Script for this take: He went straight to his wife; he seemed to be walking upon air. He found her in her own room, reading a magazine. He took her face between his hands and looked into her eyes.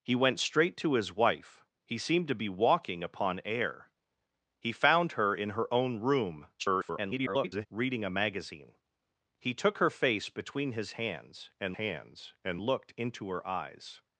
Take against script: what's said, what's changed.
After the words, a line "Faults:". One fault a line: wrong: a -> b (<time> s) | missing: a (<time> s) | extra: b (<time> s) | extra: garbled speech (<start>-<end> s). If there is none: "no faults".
He went straight to his wife; he seemed to be walking upon air. He found her in her own room, [garbled] reading a magazine. He took her face between his hands and hands and looked into her eyes.
Faults:
extra: garbled speech (6.6-7.7 s)
extra: hands and (11.7 s)